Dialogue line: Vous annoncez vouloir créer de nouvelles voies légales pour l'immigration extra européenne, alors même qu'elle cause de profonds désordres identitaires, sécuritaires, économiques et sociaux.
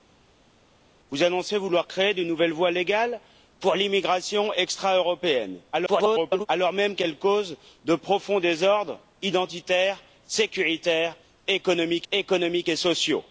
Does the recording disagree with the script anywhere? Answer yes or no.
yes